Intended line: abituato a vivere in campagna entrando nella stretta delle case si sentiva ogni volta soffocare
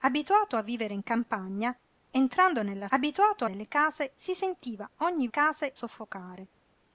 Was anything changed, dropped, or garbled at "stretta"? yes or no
yes